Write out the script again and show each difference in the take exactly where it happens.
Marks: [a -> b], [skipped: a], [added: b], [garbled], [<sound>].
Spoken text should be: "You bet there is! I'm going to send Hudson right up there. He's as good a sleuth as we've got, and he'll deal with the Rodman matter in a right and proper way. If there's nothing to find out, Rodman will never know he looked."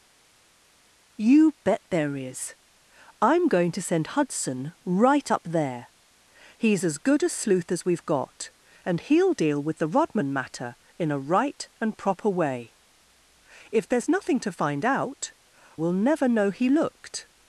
"You bet there is! I'm going to send Hudson right up there. He's as good a sleuth as we've got, and he'll deal with the Rodman matter in a right and proper way. If there's nothing to find out, [skipped: Rodman] will never know he looked."